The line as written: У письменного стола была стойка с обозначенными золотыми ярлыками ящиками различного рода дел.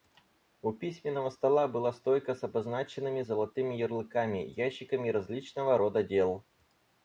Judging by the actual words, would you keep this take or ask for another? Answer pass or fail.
pass